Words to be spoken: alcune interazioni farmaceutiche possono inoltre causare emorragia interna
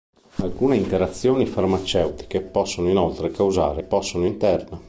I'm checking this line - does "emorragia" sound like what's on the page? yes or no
no